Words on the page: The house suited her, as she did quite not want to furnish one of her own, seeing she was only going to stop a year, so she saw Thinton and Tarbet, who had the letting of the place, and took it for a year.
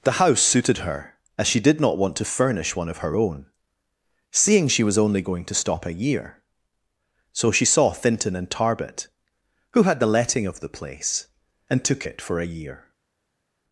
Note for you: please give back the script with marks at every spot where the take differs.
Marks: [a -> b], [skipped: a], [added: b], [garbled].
The house suited her, as she did [skipped: quite] not want to furnish one of her own, seeing she was only going to stop a year, so she saw Thinton and Tarbet, who had the letting of the place, and took it for a year.